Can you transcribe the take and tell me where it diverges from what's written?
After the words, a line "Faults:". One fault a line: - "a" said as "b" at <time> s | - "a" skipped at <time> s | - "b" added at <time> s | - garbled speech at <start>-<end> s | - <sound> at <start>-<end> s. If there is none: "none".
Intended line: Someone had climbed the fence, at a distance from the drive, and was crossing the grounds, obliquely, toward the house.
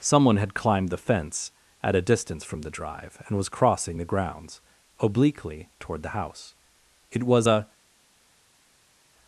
Someone had climbed the fence, at a distance from the drive, and was crossing the grounds, obliquely, toward the house. It was a
Faults:
- "It was a" added at 7.1 s